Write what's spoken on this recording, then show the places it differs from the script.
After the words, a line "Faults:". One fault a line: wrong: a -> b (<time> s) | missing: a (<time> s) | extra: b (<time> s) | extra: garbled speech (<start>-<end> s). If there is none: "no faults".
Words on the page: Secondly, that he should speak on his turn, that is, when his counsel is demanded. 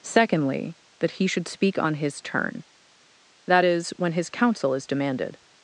Secondly, that he should speak on his turn, that is, when his counsel is demanded.
Faults:
no faults